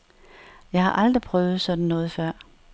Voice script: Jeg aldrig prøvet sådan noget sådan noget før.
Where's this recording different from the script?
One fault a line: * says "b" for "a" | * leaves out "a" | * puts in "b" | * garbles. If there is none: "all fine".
* puts in "har"
* leaves out "sådan noget"